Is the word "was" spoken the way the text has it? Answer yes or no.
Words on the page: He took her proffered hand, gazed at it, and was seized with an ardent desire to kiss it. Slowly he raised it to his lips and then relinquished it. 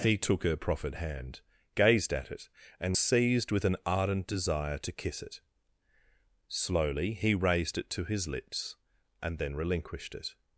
no